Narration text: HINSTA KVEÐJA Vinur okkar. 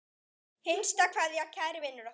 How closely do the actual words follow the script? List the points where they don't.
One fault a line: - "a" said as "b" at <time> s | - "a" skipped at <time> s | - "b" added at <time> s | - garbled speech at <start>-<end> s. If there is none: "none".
- "Kæri" added at 1.5 s